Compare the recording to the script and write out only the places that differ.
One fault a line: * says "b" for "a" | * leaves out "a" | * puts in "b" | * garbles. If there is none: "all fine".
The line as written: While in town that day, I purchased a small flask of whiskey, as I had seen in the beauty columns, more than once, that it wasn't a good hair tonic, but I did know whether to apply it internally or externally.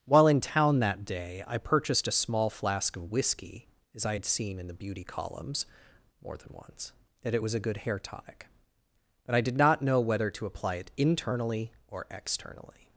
* says "was" for "wasn't"
* puts in "not"